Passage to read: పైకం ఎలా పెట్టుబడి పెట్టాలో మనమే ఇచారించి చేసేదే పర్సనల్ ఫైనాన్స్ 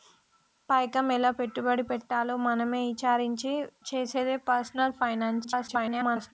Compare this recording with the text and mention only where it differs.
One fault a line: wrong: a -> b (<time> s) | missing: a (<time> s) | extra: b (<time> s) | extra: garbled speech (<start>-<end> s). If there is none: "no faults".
extra: garbled speech (5.4-6.3 s)